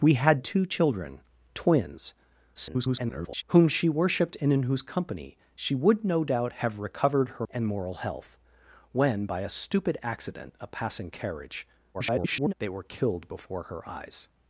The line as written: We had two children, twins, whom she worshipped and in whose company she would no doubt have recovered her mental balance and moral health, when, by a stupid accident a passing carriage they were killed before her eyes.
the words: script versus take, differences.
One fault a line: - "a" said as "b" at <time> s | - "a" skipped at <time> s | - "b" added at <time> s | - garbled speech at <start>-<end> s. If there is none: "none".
- garbled speech at 2.5-3.4 s
- "mental balance" skipped at 7.5 s
- garbled speech at 11.9-12.5 s